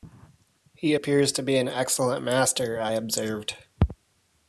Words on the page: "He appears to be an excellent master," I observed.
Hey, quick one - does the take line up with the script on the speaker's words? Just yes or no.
yes